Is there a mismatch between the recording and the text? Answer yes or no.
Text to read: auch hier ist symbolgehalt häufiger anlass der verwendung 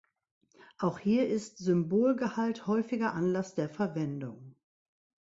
no